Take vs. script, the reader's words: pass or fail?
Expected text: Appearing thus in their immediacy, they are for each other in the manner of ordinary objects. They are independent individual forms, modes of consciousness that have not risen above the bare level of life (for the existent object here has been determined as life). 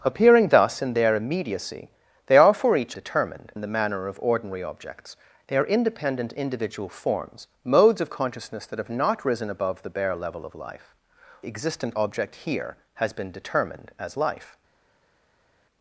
fail